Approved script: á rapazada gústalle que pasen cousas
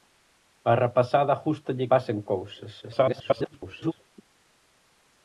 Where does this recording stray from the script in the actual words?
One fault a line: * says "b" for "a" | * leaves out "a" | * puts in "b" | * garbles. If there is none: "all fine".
* leaves out "que"
* garbles